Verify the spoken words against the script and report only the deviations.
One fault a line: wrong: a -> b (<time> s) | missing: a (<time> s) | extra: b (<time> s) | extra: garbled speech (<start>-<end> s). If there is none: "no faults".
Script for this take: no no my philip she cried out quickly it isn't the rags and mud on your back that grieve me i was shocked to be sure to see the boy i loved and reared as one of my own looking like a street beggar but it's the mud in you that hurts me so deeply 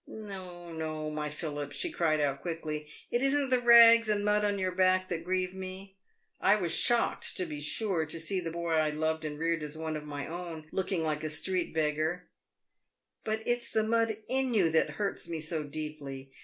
no faults